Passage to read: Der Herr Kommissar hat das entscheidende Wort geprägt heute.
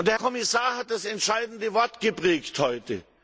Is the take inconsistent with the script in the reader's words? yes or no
yes